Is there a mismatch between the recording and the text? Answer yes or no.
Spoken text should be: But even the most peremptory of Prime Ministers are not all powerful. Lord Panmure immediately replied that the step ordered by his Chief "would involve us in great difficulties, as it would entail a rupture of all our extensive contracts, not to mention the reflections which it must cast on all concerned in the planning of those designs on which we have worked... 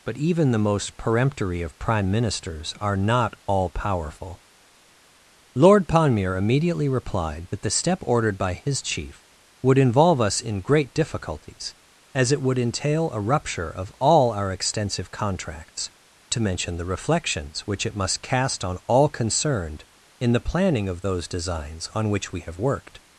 yes